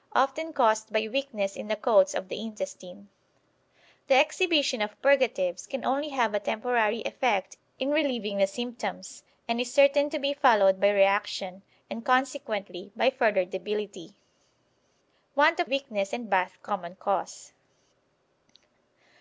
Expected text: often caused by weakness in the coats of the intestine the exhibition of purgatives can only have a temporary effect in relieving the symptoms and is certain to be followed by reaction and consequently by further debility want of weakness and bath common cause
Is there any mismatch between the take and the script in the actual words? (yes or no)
no